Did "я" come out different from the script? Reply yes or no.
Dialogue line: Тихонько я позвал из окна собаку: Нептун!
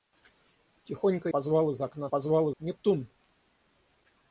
yes